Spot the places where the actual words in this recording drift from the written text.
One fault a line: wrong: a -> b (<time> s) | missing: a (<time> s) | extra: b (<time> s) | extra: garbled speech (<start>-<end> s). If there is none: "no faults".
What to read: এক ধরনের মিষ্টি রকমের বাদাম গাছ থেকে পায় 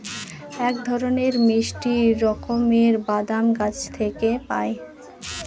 no faults